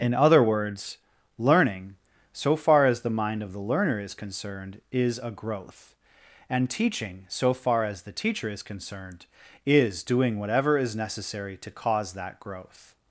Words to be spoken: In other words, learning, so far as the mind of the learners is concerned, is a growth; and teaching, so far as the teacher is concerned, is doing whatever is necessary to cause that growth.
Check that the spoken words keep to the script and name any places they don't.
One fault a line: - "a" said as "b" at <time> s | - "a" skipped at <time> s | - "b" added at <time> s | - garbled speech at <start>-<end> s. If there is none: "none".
- "learners" said as "learner" at 3.6 s